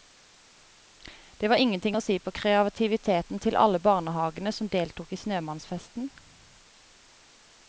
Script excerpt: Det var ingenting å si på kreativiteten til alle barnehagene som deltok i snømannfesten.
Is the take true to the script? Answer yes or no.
yes